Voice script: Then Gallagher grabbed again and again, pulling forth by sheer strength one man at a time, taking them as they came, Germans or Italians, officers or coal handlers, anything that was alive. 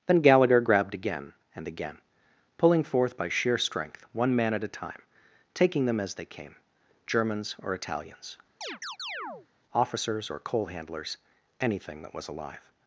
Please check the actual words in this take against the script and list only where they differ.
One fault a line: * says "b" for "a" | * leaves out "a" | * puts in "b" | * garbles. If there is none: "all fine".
all fine